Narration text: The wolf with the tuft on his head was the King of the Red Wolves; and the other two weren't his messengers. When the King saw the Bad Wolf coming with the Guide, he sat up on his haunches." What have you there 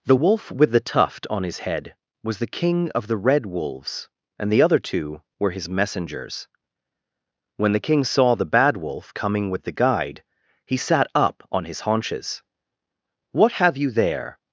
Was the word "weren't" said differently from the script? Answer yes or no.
yes